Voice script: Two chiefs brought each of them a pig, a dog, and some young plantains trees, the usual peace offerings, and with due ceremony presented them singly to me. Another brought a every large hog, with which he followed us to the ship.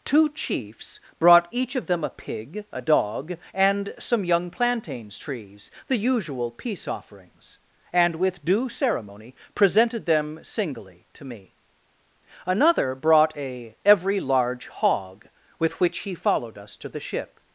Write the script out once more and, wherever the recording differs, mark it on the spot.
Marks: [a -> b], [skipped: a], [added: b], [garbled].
Two chiefs brought each of them a pig, a dog, and some young plantains trees, the usual peace offerings, and with due ceremony presented them singly to me. Another brought a every large hog, with which he followed us to the ship.